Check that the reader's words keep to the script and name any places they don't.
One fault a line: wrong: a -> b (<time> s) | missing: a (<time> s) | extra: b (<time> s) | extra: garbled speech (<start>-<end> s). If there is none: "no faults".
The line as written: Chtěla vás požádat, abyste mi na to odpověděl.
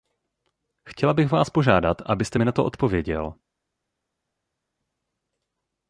extra: bych (1.1 s)